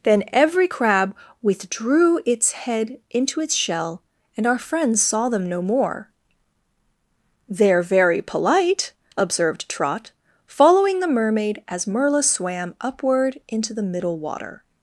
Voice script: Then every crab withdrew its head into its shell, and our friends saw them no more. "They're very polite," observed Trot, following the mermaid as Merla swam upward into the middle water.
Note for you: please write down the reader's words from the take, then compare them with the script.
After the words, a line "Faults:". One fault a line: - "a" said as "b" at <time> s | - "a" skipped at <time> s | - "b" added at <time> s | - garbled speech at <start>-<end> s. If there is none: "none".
Then every crab withdrew its head into its shell, and our friends saw them no more. "They're very polite," observed Trot, following the mermaid as Merla swam upward into the middle water.
Faults:
none